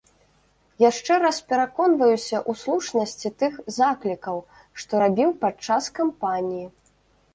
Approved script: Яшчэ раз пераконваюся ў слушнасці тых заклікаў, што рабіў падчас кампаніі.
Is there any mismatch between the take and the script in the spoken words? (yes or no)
no